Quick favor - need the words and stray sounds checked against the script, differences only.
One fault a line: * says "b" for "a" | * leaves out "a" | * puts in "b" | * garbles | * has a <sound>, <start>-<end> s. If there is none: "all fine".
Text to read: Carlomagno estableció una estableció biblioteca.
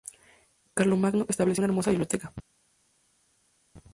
* says "hermosa" for "estableció"